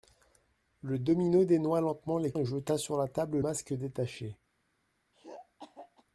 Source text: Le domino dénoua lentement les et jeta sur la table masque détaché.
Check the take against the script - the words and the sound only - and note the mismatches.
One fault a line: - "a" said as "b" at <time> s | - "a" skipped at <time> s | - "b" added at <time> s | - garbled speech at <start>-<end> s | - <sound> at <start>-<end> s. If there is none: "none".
- throat clearing at 5.1-6.0 s